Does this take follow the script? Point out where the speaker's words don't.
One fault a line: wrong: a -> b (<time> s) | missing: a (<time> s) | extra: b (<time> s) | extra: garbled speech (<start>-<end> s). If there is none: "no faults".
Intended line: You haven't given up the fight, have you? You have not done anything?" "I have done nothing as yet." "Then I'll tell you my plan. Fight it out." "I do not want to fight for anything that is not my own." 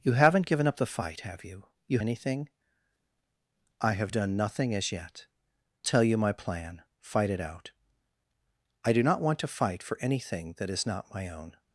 missing: have not done (2.0 s)
missing: Then I'll (5.3 s)